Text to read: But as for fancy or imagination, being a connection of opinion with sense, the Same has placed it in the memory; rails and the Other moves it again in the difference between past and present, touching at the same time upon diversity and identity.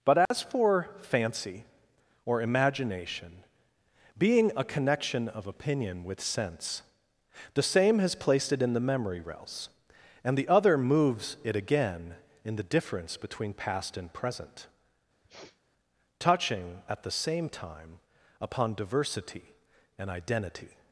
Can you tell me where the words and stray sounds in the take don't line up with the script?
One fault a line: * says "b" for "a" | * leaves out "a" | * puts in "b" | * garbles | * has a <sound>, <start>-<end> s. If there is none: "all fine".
* has a dropout, 0.3-0.3 s
* has a sniff, 15.2-15.6 s